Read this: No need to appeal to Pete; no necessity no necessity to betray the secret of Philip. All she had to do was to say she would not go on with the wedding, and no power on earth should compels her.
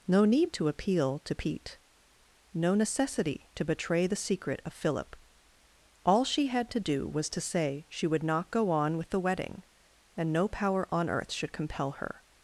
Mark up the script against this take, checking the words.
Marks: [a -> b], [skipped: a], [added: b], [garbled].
No need to appeal to Pete; no necessity [skipped: no necessity] to betray the secret of Philip. All she had to do was to say she would not go on with the wedding, and no power on earth should [compels -> compel] her.